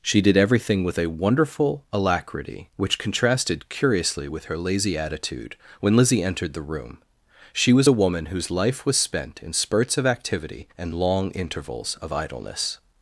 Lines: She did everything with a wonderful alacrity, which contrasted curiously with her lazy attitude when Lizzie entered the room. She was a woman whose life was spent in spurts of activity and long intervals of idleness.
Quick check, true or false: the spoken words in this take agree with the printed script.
true